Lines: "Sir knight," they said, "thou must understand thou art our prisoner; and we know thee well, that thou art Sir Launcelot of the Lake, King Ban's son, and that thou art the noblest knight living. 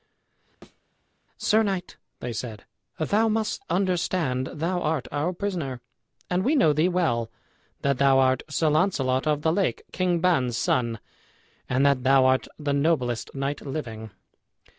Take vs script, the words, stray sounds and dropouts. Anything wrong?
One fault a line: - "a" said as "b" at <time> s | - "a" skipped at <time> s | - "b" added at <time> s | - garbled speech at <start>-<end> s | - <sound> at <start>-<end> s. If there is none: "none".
- thud at 0.6-0.8 s